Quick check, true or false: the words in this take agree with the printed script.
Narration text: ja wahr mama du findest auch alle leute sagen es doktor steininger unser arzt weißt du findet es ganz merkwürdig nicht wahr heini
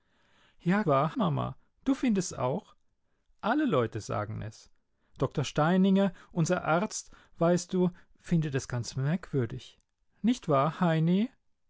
true